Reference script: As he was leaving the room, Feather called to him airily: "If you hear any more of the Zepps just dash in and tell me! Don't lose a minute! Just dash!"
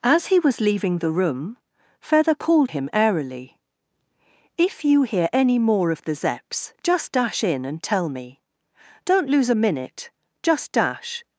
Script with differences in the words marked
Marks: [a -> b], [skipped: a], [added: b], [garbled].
As he was leaving the room, Feather called [skipped: to] him airily: "If you hear any more of the Zepps just dash in and tell me! Don't lose a minute! Just dash!"